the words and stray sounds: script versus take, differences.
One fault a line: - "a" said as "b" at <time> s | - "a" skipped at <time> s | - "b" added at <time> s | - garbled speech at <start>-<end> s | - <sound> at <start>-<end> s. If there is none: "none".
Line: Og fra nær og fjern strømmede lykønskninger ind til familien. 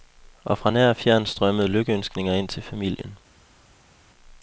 none